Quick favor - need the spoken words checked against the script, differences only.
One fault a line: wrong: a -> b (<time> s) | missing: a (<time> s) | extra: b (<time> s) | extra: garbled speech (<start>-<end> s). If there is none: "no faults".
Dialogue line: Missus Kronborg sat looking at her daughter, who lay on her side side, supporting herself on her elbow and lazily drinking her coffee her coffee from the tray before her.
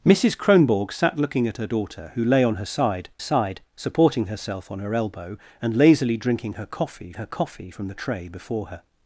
no faults